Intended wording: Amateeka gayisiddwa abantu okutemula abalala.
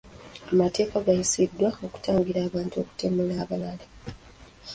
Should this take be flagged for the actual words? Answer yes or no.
yes